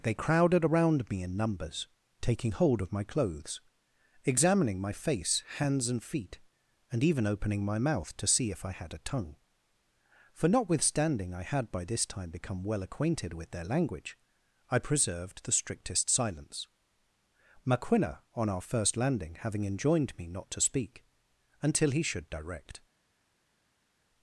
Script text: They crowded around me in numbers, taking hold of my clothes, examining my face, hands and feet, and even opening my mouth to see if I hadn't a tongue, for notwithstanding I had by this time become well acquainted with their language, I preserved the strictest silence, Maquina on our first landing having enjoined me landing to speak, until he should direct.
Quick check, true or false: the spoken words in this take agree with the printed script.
false